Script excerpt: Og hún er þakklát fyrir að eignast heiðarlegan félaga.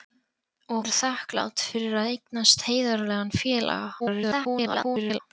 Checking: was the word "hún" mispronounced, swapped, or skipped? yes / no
yes